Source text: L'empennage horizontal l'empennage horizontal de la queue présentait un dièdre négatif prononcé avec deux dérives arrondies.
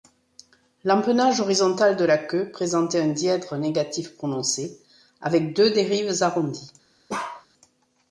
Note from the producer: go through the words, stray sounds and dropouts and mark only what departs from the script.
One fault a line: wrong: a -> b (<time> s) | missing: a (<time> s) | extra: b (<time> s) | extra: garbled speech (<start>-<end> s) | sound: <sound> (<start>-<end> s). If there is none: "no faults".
missing: l'empennage horizontal (1.9 s)
sound: bark (7.1-7.5 s)